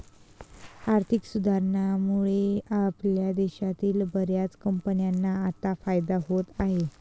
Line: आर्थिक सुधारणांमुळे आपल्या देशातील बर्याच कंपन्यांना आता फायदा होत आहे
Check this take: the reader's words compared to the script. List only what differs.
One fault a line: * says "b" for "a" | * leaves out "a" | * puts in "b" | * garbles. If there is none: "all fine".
all fine